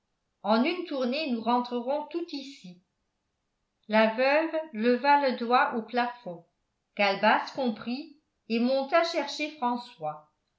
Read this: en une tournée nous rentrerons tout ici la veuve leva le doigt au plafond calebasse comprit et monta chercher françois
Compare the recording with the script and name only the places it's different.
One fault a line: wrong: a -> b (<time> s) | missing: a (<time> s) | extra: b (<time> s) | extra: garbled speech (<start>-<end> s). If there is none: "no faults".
no faults